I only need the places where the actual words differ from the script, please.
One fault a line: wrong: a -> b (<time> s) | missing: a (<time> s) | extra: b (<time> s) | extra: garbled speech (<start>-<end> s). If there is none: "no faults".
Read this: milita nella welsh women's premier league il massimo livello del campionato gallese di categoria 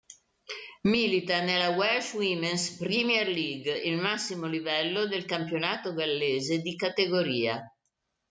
no faults